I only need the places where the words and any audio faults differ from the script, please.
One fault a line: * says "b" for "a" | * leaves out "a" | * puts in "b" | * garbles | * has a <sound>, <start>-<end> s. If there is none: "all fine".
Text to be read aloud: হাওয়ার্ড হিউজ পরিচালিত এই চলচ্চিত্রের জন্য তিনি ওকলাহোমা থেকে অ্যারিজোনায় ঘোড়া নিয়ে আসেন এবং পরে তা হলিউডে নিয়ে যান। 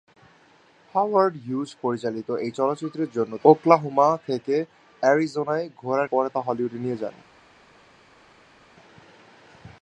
* leaves out "তিনি"
* leaves out "নিয়ে আসেন এবং"